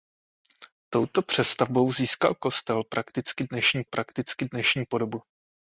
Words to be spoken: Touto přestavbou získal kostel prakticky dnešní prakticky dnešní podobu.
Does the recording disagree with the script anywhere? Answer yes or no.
no